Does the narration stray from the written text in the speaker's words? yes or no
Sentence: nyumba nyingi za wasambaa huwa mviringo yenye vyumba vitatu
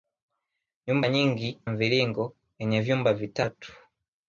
yes